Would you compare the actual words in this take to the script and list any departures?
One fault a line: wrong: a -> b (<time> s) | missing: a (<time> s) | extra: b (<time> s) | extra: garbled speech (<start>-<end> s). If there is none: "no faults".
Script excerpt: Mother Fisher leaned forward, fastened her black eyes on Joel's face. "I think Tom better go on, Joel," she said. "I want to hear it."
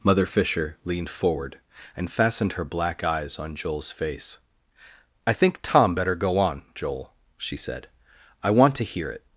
extra: and (1.9 s)